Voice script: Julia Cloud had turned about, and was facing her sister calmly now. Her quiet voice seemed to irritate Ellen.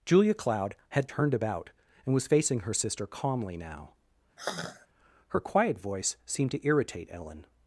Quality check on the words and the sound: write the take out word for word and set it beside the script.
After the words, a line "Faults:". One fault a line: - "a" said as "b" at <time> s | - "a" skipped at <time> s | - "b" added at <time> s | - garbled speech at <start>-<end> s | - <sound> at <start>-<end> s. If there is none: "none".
Julia Cloud had turned about, and was facing her sister calmly now. Her quiet voice seemed to irritate Ellen.
Faults:
- sigh at 4.4-4.9 s